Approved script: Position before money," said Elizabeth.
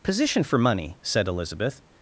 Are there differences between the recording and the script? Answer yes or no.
yes